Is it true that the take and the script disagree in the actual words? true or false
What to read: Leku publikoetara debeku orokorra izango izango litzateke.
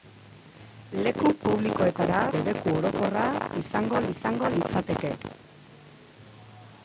false